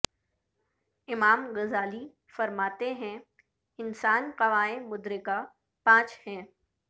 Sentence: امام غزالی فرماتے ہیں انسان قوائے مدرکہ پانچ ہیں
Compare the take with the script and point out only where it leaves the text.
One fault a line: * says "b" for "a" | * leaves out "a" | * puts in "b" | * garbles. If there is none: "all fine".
all fine